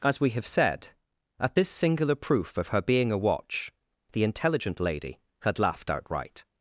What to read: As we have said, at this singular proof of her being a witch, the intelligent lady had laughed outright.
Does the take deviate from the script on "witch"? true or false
true